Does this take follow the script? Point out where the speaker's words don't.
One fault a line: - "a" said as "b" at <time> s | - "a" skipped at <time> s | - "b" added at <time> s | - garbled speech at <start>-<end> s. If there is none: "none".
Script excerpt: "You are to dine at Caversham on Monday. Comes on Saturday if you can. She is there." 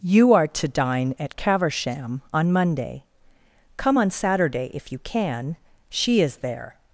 - "Comes" said as "Come" at 3.8 s